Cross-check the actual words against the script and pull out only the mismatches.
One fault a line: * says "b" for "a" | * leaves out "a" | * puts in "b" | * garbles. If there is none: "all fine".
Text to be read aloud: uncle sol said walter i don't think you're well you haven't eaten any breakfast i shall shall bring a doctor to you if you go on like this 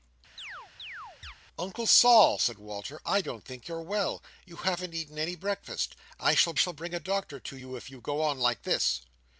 all fine